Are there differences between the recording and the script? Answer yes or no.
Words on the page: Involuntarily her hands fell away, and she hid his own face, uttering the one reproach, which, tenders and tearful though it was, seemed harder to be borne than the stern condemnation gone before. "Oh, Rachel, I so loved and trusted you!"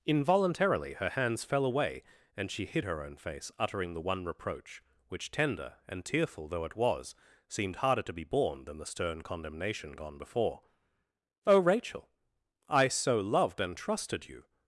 yes